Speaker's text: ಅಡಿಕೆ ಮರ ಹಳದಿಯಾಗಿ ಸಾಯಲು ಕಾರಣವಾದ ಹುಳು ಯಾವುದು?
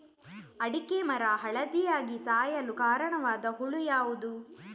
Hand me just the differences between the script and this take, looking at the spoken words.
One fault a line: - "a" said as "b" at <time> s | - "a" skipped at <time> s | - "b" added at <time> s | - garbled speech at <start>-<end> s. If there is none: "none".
none